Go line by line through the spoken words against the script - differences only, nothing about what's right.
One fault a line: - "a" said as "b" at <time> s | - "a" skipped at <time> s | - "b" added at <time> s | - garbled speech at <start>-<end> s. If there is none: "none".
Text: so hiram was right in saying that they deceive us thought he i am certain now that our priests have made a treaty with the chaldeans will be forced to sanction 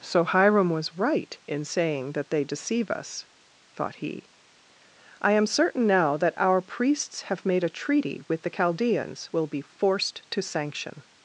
none